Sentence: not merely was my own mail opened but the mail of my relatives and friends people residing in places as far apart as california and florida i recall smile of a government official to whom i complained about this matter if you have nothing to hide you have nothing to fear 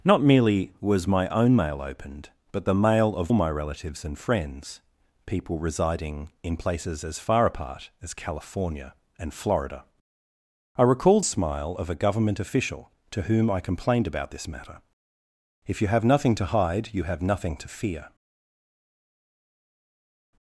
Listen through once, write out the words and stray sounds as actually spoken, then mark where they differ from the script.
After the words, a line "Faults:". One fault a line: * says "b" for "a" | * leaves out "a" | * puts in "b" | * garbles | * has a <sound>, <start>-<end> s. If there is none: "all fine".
not merely was my own mail opened but the mail of my relatives and friends people residing in places as far apart as california and florida i recall smile of a government official to whom i complained about this matter if you have nothing to hide you have nothing to fear
Faults:
all fine